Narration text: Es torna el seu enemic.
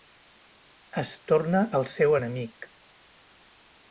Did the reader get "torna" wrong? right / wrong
right